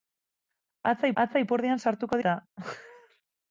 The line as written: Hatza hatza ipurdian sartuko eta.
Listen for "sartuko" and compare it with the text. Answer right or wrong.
right